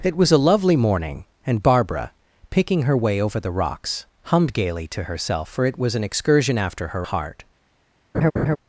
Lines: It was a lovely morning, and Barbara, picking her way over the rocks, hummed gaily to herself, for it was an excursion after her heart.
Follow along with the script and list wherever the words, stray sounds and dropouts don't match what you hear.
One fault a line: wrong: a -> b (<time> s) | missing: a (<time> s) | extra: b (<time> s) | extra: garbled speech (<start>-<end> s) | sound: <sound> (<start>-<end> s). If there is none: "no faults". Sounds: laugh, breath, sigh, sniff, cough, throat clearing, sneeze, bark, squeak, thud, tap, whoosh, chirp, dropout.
sound: laugh (8.1-8.6 s)